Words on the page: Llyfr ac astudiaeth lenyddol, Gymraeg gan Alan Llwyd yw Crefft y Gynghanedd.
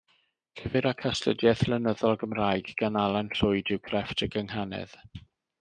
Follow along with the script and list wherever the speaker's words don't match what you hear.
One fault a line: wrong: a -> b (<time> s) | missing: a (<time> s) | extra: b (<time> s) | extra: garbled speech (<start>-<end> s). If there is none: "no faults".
no faults